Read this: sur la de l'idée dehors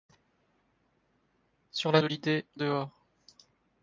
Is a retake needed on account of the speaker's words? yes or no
no